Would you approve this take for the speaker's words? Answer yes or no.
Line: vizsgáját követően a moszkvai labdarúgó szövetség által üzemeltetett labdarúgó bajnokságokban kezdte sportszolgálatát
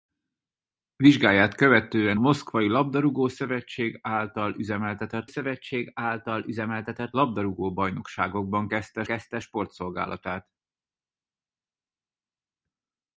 no